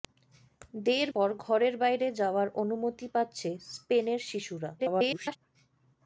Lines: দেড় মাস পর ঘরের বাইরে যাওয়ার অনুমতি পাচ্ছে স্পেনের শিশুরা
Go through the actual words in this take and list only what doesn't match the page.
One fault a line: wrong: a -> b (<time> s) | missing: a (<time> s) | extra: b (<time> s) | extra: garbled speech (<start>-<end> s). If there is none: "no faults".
missing: মাস (1.1 s)
extra: garbled speech (4.8-5.4 s)